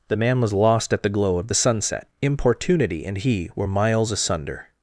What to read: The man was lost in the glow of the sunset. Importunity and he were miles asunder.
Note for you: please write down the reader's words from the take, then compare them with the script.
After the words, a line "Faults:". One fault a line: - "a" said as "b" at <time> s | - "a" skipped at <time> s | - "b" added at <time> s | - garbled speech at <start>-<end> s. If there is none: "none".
The man was lost at the glow of the sunset. Importunity and he were miles asunder.
Faults:
- "in" said as "at" at 0.9 s